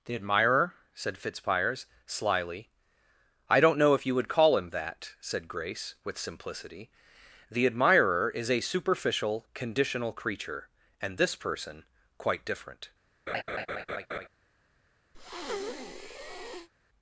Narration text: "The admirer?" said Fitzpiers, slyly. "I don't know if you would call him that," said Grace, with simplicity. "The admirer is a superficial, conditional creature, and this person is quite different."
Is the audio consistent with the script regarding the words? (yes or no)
no